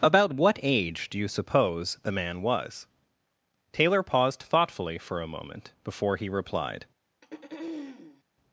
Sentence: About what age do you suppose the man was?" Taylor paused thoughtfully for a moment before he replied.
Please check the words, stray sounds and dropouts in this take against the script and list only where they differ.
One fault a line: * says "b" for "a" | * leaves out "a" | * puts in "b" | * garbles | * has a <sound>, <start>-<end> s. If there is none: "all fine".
* has a throat clearing, 7.2-8.2 s